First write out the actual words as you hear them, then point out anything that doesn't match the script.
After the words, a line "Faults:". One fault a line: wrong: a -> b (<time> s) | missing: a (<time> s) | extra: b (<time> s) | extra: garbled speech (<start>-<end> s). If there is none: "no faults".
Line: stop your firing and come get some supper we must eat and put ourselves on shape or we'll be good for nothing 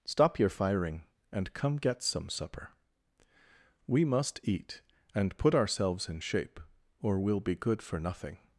stop your firing and come get some supper we must eat and put ourselves in shape or we'll be good for nothing
Faults:
wrong: on -> in (6.1 s)